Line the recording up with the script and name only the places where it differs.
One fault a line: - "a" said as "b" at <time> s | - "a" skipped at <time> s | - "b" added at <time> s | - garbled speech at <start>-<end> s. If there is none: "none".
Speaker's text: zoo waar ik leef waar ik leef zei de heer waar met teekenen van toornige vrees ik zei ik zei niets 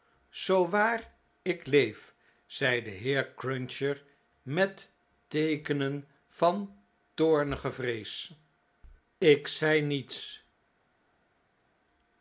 - "waar ik leef" skipped at 2.1 s
- "waar" said as "cruncher" at 3.3 s
- "ik zei" skipped at 9.8 s